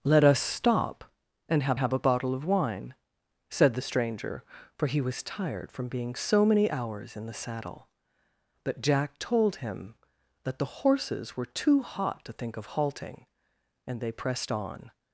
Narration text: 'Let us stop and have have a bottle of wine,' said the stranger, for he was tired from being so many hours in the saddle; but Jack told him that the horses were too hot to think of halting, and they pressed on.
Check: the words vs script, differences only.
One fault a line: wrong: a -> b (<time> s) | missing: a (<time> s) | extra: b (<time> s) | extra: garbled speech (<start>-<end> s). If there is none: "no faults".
no faults